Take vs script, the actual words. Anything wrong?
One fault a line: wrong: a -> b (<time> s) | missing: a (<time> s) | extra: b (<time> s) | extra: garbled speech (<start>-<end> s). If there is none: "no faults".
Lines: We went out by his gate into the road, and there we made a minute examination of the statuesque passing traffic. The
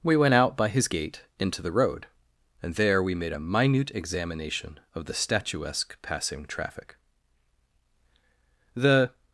no faults